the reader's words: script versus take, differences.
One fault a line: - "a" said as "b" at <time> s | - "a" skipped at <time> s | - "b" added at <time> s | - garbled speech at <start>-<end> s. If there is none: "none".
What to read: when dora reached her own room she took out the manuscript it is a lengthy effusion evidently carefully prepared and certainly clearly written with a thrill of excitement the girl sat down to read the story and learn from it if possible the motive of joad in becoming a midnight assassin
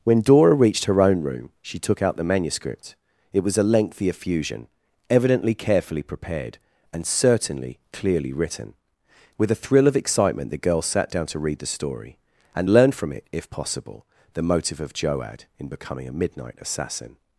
- "is" said as "was" at 3.4 s